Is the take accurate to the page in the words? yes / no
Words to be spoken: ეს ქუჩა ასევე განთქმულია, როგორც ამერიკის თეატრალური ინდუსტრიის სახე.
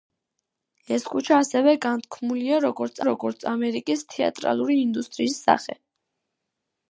no